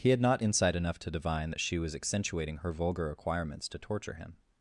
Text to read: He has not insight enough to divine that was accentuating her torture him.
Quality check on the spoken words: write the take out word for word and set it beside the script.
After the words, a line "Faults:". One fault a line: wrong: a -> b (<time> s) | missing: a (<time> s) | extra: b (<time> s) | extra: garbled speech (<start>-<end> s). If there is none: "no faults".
He had not insight enough to divine that she was accentuating her vulgar acquirements to torture him.
Faults:
wrong: has -> had (0.1 s)
extra: she (1.6 s)
extra: vulgar acquirements to (2.7 s)